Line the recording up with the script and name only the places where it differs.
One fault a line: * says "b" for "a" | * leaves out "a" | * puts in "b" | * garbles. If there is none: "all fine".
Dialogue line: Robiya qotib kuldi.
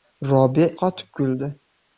all fine